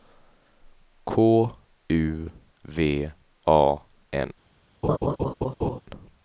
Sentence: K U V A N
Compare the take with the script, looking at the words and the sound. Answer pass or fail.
fail